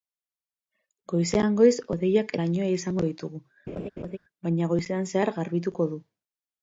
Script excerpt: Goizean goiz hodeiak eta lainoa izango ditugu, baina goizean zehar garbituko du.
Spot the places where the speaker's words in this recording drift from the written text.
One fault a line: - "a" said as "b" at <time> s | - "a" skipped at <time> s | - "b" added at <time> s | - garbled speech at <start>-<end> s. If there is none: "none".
- "eta" skipped at 2.3 s